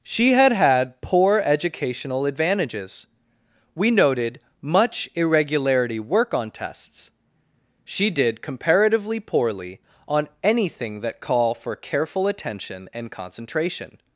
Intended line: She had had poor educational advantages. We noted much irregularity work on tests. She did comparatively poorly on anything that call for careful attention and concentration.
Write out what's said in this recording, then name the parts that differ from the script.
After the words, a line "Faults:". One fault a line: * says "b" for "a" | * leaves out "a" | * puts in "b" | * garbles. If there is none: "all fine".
She had had poor educational advantages. We noted much irregularity work on tests. She did comparatively poorly on anything that call for careful attention and concentration.
Faults:
all fine